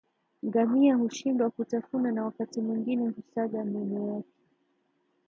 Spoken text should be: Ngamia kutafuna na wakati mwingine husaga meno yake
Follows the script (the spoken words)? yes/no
no